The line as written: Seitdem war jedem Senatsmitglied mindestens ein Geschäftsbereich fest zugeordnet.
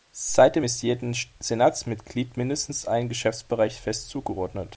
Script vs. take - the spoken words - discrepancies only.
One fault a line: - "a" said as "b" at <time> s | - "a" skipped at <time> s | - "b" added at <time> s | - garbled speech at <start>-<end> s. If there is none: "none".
- "war" said as "ist" at 0.6 s